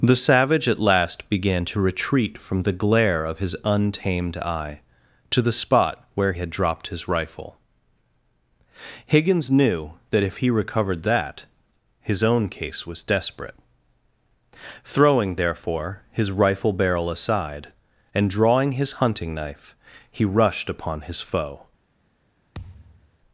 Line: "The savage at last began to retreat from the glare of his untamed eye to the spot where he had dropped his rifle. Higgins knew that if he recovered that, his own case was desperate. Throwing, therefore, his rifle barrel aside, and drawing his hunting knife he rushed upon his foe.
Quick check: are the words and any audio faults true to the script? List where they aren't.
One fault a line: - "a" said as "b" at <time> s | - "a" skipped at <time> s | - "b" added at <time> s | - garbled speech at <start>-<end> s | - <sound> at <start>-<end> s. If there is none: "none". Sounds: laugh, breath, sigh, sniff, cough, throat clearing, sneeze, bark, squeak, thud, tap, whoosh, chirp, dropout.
- "he" skipped at 6.3 s
- thud at 22.5-23.2 s